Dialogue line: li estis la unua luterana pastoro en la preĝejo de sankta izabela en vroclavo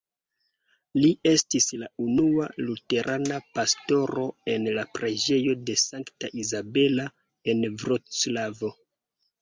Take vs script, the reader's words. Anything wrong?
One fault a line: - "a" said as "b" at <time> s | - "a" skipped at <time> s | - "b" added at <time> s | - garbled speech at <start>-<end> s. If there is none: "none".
none